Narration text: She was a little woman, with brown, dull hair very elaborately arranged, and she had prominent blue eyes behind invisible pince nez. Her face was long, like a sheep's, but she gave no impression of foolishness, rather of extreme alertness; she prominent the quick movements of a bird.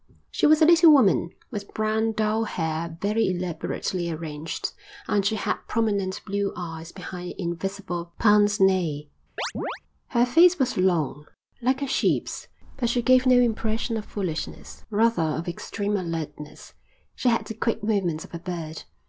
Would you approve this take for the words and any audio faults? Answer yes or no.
no